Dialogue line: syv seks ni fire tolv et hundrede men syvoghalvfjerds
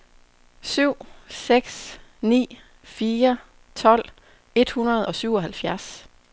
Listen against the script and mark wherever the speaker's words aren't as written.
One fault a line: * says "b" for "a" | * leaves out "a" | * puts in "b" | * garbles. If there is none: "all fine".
* says "og" for "men"